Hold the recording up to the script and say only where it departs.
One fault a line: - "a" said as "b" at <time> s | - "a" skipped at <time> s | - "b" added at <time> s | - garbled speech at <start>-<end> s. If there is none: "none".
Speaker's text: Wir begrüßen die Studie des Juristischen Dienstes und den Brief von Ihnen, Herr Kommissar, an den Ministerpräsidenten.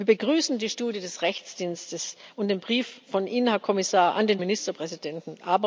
none